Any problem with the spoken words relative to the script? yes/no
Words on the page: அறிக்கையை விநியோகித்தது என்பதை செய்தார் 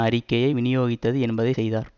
no